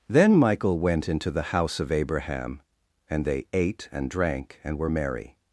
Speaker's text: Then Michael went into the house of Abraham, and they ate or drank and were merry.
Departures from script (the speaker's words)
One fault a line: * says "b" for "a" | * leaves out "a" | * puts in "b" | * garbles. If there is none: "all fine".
* says "and" for "or"